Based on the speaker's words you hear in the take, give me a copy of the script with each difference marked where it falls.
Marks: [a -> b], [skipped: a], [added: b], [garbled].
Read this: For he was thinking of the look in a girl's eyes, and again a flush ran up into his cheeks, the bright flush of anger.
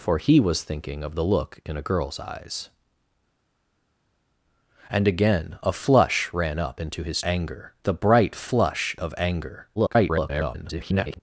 For he was thinking of the look in a girl's eyes, and again a flush ran up into his [cheeks, -> anger] the bright flush of anger. [garbled]